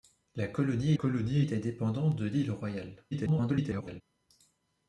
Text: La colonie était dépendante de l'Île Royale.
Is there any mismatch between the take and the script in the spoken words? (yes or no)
yes